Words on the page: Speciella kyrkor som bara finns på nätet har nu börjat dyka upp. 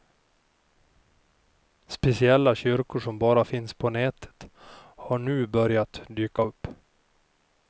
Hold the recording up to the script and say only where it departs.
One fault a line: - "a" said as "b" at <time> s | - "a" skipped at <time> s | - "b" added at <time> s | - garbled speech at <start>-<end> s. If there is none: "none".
none